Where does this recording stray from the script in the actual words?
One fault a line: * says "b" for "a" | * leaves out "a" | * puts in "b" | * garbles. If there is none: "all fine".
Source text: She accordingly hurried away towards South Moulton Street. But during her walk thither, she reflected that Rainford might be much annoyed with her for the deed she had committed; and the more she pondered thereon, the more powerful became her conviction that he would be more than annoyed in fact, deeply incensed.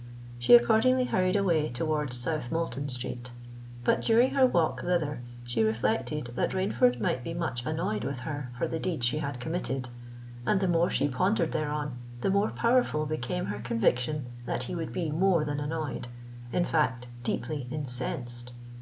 all fine